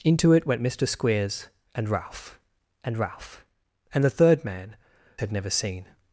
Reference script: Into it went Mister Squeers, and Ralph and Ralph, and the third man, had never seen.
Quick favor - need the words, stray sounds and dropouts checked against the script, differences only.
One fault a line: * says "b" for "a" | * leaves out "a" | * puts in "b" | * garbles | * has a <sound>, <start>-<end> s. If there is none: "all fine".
all fine